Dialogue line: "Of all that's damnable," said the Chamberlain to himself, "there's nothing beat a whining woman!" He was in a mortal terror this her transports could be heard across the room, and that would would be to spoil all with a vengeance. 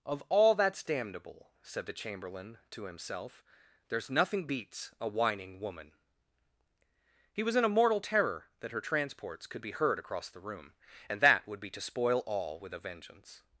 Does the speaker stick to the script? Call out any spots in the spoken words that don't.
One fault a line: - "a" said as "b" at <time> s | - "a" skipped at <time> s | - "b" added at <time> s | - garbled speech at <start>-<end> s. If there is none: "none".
- "beat" said as "beats" at 4.5 s
- "this" said as "that" at 8.6 s
- "would" skipped at 11.6 s